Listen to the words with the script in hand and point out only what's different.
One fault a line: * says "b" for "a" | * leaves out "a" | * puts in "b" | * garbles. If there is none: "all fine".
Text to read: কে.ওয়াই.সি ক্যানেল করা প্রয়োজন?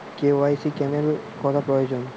all fine